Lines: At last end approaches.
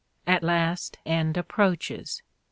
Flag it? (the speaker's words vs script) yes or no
no